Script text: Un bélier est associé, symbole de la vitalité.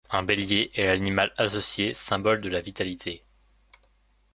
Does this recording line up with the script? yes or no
no